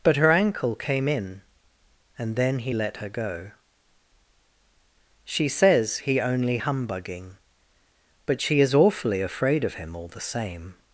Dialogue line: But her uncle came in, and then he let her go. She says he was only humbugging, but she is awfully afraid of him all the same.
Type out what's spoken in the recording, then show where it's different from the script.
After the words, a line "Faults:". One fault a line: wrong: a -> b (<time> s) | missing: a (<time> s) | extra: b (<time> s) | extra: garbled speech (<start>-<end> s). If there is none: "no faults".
But her ankle came in, and then he let her go. She says he only humbugging, but she is awfully afraid of him all the same.
Faults:
wrong: uncle -> ankle (0.3 s)
missing: was (6.2 s)